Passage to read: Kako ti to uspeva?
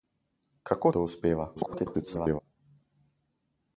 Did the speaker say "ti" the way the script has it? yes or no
no